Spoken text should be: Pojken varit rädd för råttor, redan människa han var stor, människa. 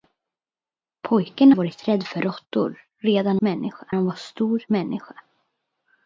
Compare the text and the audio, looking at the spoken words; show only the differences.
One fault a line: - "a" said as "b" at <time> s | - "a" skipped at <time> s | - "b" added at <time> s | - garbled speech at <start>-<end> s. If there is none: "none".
none